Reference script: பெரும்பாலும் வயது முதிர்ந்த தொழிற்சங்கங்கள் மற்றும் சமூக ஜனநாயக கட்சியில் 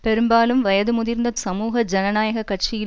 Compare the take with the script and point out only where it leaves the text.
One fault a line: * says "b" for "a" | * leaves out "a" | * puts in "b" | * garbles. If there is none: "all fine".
* leaves out "தொழிற்சங்கங்கள் மற்றும்"